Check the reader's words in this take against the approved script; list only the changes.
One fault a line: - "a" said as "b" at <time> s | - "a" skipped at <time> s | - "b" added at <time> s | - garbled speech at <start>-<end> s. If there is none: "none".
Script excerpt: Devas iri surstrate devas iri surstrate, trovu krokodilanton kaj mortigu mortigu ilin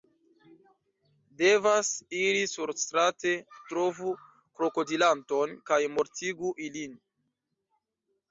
- "devas iri surstrate" skipped at 3.3 s
- "mortigu" skipped at 6.5 s